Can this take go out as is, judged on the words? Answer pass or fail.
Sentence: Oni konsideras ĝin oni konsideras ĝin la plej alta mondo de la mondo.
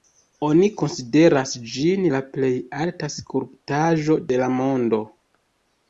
fail